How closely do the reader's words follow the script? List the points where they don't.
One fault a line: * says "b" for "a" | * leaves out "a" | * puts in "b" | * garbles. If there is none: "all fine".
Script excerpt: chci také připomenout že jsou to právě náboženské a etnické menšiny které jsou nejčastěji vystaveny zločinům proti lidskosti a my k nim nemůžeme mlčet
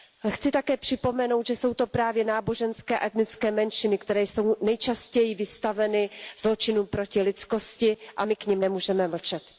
all fine